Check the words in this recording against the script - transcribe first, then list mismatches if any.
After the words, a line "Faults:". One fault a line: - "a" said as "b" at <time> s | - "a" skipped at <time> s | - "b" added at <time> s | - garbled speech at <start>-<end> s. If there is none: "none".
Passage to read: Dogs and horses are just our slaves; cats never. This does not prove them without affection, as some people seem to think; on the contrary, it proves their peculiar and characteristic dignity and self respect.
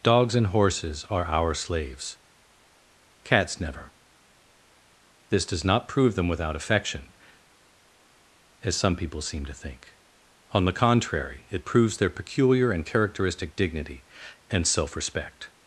Dogs and horses are our slaves; cats never. This does not prove them without affection, as some people seem to think; on the contrary, it proves their peculiar and characteristic dignity and self respect.
Faults:
- "just" skipped at 1.2 s